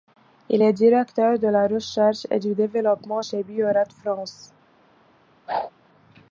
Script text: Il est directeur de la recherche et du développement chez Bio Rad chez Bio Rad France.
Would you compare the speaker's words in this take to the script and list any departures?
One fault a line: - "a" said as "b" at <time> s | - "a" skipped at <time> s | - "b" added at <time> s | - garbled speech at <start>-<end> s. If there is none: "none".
- "chez Bio Rad" skipped at 3.9 s